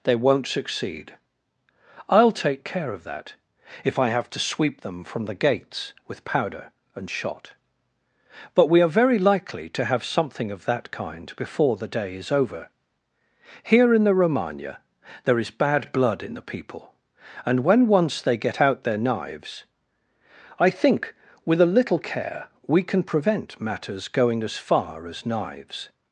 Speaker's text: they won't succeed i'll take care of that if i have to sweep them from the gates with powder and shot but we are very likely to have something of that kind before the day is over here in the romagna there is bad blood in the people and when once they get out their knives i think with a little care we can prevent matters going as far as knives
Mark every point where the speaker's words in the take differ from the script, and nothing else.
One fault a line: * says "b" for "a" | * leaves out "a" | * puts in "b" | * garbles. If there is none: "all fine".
all fine